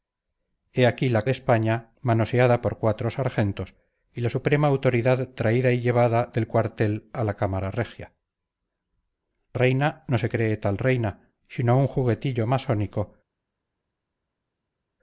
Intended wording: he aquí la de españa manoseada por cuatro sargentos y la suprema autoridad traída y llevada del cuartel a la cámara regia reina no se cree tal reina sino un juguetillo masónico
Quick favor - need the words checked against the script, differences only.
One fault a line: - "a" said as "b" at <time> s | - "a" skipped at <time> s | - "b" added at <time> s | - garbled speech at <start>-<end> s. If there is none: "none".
none